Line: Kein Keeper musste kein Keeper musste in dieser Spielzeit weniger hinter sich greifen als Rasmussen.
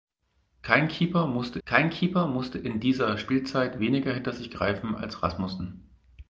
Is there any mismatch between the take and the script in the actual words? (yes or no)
no